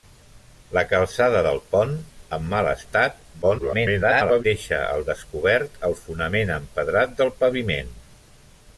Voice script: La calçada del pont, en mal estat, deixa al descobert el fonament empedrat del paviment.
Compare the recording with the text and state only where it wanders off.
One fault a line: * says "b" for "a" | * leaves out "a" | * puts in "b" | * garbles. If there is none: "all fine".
* garbles